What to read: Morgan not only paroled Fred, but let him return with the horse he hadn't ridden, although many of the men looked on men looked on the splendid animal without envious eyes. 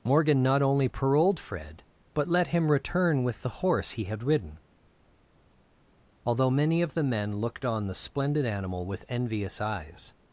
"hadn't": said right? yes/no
no